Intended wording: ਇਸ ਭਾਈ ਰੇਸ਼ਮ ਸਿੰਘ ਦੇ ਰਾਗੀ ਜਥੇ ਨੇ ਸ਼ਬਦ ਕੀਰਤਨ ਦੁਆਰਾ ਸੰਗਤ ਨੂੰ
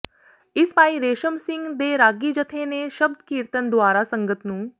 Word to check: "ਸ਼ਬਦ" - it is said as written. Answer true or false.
true